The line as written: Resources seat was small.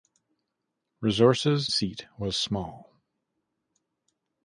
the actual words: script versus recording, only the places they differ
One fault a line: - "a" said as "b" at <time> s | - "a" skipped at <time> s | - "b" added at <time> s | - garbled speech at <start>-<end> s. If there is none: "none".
none